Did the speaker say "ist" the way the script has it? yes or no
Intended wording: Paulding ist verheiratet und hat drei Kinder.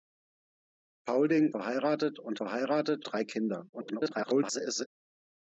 no